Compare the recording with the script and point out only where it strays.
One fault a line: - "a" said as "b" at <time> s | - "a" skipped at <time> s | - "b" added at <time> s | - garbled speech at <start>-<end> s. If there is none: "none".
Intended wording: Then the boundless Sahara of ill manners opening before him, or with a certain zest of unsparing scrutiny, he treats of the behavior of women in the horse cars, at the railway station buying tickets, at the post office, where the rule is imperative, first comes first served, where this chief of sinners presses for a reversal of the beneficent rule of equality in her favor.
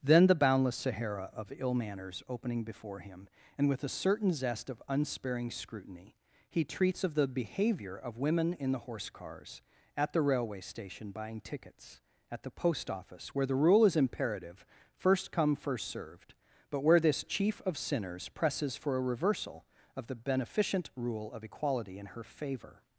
- "or" said as "and" at 3.6 s
- "comes" said as "come" at 15.3 s
- "but" added at 16.7 s